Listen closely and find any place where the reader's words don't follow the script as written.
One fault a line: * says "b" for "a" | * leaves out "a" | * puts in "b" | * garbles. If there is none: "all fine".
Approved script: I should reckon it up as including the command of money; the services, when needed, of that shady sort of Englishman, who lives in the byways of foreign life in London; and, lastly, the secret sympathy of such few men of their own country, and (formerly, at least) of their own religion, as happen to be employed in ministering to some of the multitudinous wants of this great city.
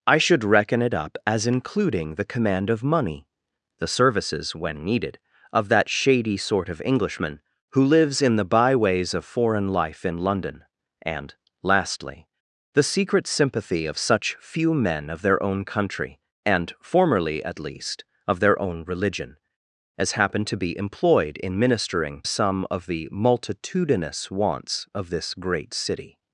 * leaves out "to"